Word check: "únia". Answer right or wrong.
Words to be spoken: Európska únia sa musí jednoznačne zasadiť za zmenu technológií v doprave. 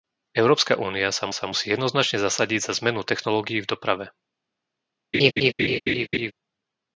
right